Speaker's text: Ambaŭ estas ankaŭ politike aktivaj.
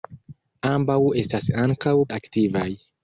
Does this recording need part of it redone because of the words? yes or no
yes